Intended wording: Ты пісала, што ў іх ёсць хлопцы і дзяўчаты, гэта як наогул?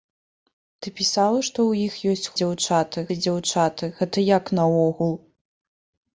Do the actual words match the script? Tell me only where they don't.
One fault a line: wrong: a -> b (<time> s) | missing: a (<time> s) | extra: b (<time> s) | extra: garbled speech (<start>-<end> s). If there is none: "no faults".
wrong: хлопцы -> дзяўчаты (2.4 s)